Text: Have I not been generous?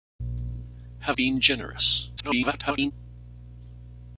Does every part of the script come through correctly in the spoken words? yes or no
no